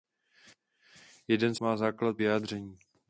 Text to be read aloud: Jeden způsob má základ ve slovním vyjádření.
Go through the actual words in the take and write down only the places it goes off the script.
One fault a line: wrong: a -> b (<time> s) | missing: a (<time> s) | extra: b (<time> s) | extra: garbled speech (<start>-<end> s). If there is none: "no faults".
missing: způsob (1.6 s)
missing: ve slovním (2.2 s)